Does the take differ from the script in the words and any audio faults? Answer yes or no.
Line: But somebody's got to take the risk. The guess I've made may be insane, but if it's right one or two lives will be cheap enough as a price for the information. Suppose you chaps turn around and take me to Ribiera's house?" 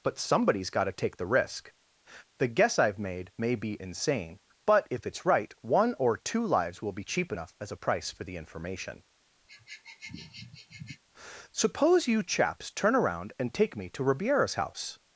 yes